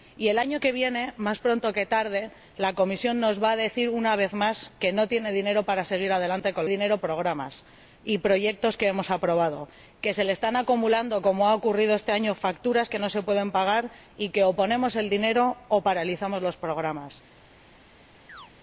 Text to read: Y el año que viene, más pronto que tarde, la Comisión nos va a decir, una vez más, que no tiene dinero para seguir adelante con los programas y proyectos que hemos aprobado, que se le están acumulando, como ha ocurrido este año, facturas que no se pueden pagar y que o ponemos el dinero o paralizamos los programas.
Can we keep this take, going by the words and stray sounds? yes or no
no